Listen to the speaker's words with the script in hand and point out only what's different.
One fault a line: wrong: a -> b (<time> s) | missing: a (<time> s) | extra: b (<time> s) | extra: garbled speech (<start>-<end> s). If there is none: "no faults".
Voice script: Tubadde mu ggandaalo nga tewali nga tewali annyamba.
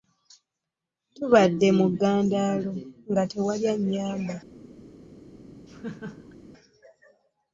missing: nga tewali (3.6 s)